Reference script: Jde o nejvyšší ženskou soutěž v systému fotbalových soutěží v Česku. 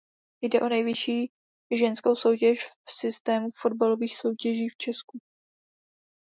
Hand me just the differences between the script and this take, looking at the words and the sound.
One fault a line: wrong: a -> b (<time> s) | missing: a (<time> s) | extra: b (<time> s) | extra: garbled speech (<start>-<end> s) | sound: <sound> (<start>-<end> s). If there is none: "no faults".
no faults